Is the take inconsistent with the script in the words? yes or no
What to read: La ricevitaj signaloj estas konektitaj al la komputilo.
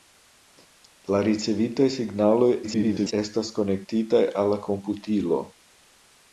yes